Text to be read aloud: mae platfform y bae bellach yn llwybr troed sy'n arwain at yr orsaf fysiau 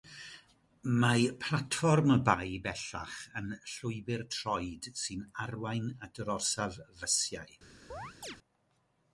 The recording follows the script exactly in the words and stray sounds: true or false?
false